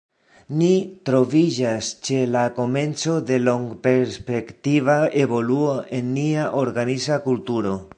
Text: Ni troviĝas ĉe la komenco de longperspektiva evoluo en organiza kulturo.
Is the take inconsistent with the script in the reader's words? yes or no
yes